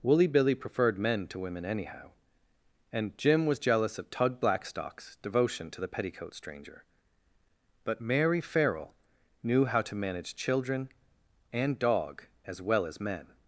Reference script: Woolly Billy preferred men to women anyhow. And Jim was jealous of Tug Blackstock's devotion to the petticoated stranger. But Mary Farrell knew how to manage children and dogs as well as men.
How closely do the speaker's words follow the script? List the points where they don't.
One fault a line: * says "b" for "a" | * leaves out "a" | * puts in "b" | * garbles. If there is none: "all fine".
* says "petticoat" for "petticoated"
* says "dog" for "dogs"